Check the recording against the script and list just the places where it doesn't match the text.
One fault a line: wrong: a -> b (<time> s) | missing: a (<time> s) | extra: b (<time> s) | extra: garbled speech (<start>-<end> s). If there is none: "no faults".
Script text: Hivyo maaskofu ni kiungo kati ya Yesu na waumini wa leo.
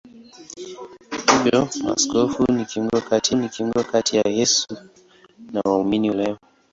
extra: ni kiungo kati (3.3 s)
missing: wa (6.1 s)